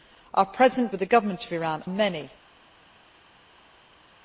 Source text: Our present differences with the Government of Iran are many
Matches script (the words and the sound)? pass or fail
fail